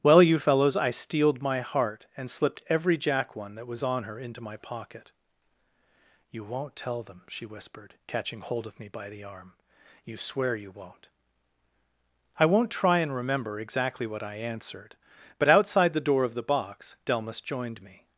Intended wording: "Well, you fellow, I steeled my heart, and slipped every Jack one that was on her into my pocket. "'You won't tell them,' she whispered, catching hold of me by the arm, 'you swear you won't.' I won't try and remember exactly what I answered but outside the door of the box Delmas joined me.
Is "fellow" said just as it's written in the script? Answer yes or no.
no